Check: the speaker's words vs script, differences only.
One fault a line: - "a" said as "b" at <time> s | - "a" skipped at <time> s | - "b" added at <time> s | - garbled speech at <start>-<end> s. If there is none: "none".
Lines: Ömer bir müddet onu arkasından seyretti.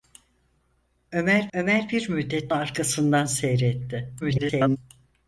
- "ömer" added at 1.5 s
- "onu" skipped at 2.5 s
- garbled speech at 4.2-4.8 s